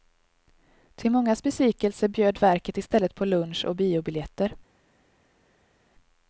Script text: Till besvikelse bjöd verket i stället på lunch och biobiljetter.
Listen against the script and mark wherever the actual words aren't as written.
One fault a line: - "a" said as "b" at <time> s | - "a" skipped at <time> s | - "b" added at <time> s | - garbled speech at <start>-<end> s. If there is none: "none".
- "mångas" added at 1.1 s